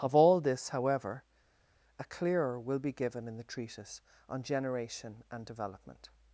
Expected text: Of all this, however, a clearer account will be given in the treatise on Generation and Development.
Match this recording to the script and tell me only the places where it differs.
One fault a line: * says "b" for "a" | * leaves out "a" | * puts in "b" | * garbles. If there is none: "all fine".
* leaves out "account"